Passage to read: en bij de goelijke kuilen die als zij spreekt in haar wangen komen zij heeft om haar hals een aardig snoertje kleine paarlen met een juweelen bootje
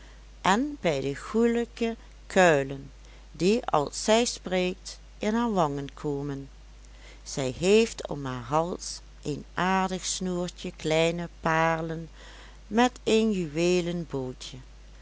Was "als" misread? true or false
false